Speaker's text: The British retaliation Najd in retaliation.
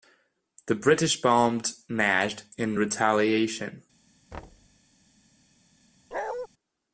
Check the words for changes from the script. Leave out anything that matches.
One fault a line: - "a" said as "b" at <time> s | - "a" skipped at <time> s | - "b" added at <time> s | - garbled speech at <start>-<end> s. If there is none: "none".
- "retaliation" said as "bombed" at 1.2 s